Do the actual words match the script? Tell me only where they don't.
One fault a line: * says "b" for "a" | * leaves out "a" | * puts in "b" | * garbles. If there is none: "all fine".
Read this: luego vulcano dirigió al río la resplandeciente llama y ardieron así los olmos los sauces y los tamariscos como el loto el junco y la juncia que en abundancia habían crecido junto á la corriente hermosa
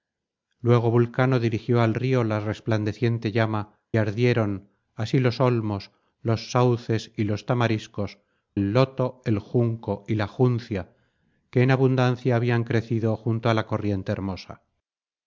* leaves out "y"
* leaves out "como"